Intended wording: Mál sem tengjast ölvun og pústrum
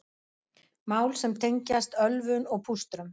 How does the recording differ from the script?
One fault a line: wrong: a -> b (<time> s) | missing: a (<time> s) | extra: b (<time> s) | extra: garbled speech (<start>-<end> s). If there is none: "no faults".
no faults